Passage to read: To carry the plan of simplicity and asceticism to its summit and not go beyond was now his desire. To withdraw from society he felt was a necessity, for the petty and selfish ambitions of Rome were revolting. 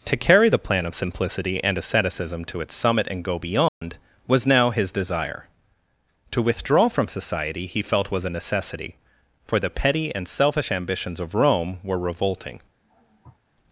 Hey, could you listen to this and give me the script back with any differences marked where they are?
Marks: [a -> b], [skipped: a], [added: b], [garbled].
To carry the plan of simplicity and asceticism to its summit and [skipped: not] go beyond was now his desire. To withdraw from society he felt was a necessity, for the petty and selfish ambitions of Rome were revolting.